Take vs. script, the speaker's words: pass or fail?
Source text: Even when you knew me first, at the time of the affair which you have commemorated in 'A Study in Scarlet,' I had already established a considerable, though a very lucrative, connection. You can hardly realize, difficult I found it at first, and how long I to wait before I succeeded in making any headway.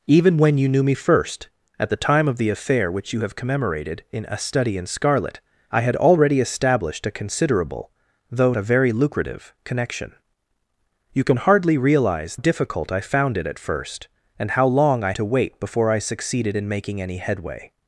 pass